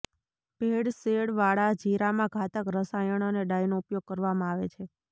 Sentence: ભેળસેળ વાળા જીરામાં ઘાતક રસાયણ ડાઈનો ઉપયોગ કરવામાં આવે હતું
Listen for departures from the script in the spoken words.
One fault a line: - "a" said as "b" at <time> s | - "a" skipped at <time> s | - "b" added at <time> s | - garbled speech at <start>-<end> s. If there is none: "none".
- "અને" added at 3.3 s
- "હતું" said as "છે" at 4.7 s